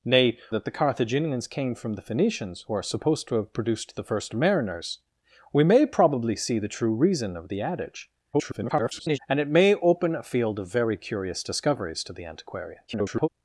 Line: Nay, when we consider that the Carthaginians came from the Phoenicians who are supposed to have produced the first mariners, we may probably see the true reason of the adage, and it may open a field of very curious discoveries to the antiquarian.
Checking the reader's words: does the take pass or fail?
fail